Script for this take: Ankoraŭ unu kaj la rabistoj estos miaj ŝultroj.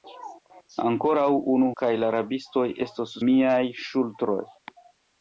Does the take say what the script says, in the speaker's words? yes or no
yes